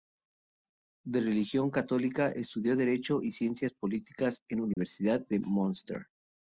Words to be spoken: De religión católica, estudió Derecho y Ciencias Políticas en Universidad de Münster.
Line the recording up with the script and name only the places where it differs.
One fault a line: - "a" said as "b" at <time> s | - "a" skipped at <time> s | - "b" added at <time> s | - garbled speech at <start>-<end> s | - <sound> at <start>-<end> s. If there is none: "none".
- dropout at 4.7-4.8 s